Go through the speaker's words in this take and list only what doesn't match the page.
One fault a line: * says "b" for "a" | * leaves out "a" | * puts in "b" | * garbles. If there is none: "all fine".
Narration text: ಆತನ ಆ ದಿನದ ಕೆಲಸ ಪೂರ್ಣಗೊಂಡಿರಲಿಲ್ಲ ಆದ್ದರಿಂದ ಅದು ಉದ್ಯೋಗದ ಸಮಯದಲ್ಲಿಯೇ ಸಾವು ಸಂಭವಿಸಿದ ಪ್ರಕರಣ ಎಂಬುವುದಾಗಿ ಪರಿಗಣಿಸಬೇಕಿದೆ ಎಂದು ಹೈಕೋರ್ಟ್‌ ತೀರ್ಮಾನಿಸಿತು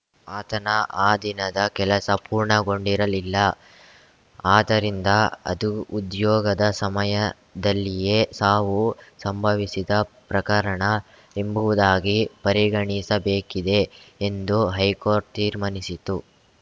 all fine